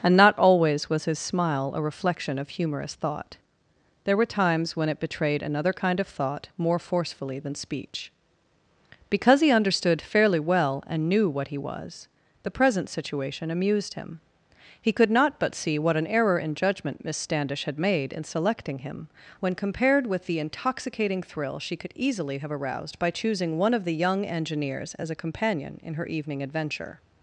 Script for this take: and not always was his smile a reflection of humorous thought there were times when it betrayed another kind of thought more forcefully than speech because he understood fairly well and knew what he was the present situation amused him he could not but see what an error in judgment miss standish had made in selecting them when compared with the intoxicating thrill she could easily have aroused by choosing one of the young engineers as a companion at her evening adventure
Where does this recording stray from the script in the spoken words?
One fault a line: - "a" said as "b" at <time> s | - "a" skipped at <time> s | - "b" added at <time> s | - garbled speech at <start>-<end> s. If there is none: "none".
- "them" said as "him" at 18.8 s
- "at" said as "in" at 25.8 s